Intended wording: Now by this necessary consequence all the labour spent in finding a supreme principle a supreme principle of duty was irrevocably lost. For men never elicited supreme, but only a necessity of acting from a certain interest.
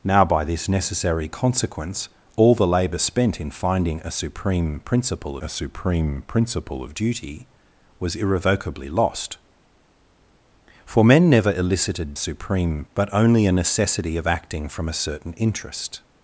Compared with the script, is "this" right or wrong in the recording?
right